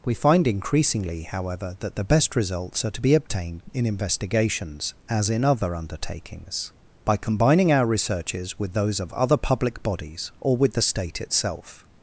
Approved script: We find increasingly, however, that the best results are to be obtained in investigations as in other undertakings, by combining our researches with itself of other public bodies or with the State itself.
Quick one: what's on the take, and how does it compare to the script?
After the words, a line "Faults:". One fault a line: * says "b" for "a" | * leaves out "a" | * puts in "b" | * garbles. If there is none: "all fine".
We find increasingly, however, that the best results are to be obtained in investigations as in other undertakings, by combining our researches with those of other public bodies or with the State itself.
Faults:
* says "those" for "itself"